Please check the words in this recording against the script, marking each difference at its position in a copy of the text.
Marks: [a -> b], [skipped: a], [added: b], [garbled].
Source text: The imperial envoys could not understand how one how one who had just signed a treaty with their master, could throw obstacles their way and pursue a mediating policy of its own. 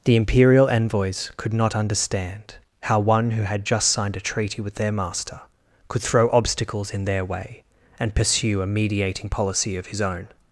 The imperial envoys could not understand how one [skipped: how one] who had just signed a treaty with their master, could throw obstacles [added: in] their way and pursue a mediating policy of [its -> his] own.